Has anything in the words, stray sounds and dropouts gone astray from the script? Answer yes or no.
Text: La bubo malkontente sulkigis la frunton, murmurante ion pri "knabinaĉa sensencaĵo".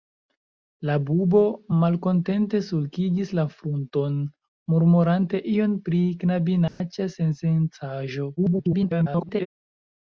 yes